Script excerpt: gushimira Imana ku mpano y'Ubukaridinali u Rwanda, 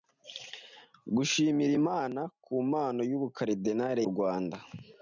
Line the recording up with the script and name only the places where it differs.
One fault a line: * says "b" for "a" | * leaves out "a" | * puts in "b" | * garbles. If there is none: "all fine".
all fine